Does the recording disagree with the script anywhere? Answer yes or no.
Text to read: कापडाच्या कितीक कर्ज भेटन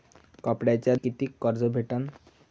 no